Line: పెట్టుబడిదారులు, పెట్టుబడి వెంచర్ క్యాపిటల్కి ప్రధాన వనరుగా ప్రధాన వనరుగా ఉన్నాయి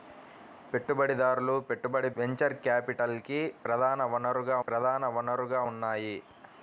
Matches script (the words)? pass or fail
pass